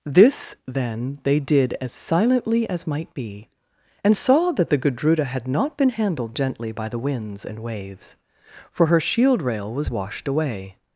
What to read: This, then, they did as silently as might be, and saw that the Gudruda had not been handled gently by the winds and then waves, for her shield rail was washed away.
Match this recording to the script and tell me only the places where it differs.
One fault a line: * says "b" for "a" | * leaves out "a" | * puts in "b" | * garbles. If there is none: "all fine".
* leaves out "then"